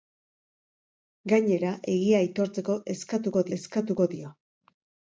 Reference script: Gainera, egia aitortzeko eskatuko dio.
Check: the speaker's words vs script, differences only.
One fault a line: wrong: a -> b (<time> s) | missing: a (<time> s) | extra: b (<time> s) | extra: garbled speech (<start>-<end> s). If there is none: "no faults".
extra: eskatuko (3.6 s)